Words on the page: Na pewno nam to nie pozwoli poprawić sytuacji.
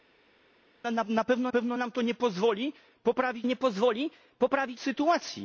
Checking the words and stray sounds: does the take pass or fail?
fail